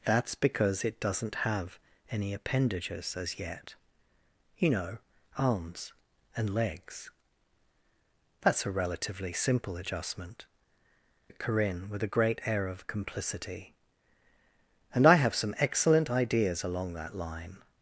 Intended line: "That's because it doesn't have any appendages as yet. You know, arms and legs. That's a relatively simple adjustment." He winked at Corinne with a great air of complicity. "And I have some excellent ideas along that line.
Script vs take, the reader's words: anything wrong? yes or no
yes